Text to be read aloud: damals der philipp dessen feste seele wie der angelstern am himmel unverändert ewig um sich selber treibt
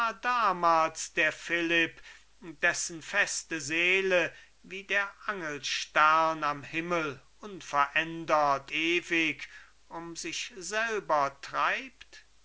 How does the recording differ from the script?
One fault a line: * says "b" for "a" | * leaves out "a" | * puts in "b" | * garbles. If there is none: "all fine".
all fine